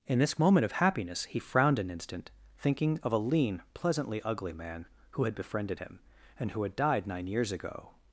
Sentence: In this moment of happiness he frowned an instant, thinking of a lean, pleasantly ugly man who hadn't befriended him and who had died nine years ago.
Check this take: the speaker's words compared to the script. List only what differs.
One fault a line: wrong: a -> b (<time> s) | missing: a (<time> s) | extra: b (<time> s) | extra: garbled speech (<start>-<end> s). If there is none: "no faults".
wrong: hadn't -> had (5.2 s)